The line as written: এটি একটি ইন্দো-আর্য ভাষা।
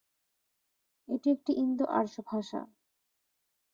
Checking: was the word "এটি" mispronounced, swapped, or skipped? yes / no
no